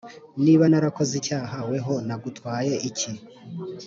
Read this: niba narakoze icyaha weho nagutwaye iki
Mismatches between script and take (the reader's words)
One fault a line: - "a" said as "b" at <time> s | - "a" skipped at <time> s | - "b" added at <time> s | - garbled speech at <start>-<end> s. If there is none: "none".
none